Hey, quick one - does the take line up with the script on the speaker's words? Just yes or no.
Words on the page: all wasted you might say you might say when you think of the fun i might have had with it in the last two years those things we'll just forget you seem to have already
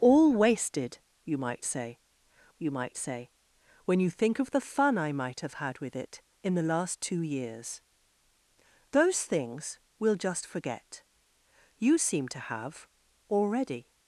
yes